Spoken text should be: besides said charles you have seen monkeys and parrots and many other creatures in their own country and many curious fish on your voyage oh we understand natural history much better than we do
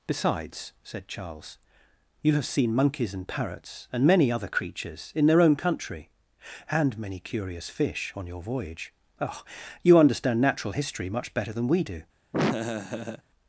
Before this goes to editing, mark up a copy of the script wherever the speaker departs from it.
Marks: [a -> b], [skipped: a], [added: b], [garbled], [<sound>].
besides said charles you have seen monkeys and parrots and many other creatures in their own country and many curious fish on your voyage oh [we -> you] understand natural history much better than we do [laugh]